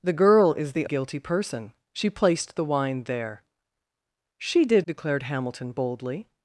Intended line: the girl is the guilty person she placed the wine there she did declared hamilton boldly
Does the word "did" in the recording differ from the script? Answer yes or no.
no